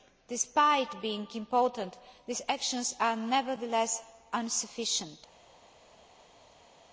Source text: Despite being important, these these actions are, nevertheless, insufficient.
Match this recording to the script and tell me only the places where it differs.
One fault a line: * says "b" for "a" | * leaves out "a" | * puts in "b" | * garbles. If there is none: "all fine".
* leaves out "these"